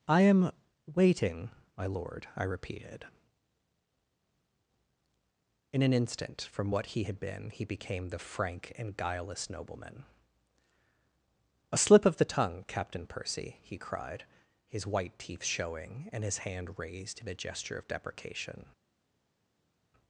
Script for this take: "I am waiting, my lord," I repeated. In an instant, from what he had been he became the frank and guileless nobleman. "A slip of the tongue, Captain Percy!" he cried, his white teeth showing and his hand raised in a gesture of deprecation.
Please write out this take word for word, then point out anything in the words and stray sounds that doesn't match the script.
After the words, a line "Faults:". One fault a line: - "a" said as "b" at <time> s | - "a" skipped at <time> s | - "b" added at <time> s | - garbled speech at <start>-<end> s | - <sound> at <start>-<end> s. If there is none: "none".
"I am waiting, my lord," I repeated. In an instant, from what he had been he became the frank and guileless nobleman. "A slip of the tongue, Captain Percy!" he cried, his white teeth showing and his hand raised in a gesture of deprecation.
Faults:
none